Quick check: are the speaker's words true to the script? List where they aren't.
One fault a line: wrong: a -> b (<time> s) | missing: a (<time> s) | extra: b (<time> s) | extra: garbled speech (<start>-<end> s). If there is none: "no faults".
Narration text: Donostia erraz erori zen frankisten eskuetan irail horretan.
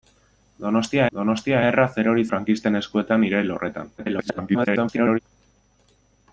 extra: donostia (1.2 s)
missing: zen (2.2 s)
extra: garbled speech (4.0-5.2 s)